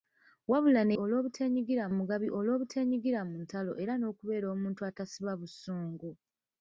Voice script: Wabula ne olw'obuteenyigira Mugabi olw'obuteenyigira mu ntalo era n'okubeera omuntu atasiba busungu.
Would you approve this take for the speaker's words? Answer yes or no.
yes